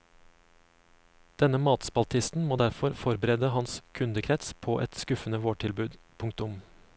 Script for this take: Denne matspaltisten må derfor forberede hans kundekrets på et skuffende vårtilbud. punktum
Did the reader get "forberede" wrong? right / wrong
right